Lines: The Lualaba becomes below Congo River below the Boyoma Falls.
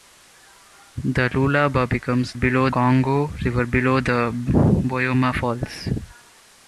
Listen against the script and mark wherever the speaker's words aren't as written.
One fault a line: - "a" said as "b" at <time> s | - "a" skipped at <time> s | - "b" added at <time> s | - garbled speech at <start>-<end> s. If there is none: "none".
none